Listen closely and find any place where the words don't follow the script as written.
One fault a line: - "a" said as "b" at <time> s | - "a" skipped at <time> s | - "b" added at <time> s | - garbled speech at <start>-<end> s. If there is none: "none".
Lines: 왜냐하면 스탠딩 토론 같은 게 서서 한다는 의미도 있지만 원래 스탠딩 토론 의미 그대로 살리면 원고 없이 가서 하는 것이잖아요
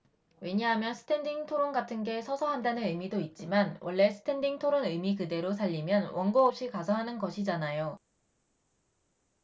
none